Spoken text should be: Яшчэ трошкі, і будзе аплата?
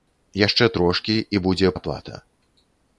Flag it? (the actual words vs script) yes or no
no